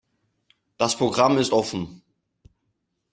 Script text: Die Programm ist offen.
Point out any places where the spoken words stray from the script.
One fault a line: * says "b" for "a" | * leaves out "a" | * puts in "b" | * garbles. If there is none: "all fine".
* says "Das" for "Die"